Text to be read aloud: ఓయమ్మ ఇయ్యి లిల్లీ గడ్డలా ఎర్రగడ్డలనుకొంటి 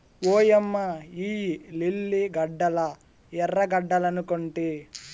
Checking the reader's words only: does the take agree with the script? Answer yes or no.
yes